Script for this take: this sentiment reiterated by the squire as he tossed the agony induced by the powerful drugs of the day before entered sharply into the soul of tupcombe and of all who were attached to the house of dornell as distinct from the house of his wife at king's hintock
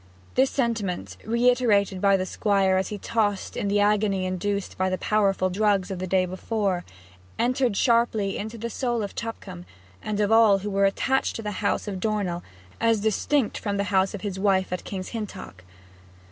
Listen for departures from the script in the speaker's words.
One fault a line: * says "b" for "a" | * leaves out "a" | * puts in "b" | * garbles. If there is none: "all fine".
* puts in "in"